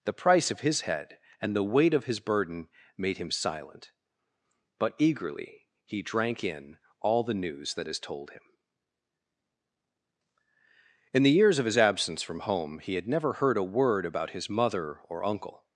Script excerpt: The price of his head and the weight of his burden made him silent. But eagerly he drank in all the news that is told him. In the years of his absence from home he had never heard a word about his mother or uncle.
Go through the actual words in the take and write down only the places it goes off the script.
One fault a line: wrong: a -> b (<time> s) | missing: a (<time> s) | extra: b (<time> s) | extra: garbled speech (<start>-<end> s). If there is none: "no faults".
no faults